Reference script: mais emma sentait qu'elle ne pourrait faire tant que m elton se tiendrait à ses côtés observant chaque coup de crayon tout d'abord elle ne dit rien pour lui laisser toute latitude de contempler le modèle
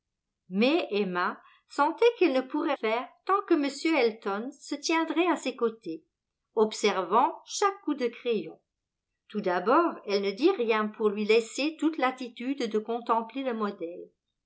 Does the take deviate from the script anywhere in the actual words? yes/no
no